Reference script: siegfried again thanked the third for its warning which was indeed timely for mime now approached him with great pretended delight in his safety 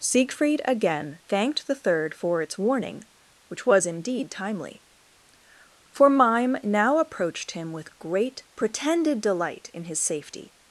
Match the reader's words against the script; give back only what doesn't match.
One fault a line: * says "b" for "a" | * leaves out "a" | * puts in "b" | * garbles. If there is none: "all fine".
all fine